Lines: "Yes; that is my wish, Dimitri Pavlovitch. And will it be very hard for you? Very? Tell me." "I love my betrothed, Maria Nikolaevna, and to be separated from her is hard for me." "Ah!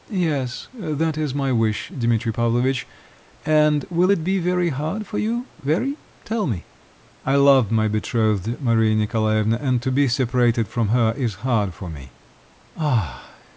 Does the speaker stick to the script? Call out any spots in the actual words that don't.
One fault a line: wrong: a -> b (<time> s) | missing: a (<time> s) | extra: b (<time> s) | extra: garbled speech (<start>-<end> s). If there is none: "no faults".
no faults